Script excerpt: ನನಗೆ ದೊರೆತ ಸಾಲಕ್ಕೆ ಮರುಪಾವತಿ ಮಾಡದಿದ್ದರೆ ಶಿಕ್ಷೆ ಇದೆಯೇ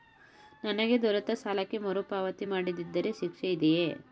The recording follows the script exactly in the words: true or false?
true